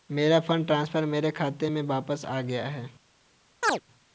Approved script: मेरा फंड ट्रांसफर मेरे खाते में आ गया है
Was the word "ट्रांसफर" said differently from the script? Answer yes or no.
no